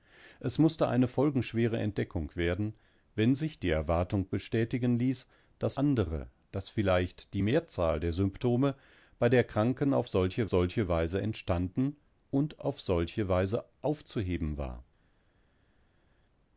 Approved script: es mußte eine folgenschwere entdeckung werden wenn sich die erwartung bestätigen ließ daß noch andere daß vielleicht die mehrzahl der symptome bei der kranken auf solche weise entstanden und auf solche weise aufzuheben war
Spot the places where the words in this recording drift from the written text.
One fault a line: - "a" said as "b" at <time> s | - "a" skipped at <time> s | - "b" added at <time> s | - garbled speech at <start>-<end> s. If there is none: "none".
- "noch" skipped at 5.8 s
- "solche" added at 10.5 s